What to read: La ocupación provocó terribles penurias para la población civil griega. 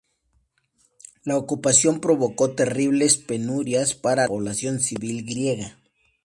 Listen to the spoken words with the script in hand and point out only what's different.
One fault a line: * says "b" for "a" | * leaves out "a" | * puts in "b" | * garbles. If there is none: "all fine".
* leaves out "la"